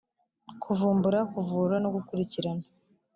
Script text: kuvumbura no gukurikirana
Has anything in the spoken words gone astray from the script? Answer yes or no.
yes